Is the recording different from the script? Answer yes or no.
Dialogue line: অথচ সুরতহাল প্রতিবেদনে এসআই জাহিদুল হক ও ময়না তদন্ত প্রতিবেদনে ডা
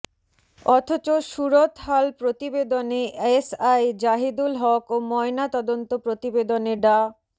no